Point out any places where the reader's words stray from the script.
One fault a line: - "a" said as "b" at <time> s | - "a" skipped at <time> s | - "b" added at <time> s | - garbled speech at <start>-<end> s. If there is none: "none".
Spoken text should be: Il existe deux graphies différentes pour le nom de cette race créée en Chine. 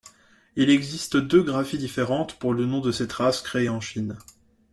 none